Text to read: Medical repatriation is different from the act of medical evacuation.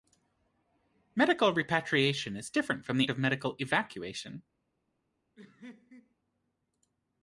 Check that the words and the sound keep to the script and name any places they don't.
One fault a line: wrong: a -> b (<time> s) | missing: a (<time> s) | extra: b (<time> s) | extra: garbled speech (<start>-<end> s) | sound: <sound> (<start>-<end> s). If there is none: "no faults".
missing: act (3.1 s)
sound: laugh (5.4-6.2 s)